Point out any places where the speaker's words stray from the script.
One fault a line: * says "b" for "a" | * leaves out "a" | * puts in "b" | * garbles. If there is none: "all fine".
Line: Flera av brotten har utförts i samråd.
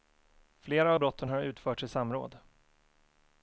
all fine